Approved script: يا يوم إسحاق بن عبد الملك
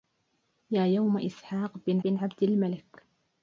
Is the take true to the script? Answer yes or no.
no